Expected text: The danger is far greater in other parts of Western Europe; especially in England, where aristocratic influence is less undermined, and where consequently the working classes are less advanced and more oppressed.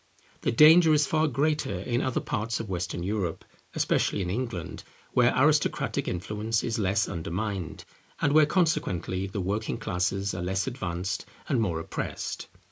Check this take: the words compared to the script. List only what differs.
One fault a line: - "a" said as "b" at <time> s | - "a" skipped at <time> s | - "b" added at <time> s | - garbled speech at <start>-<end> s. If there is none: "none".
none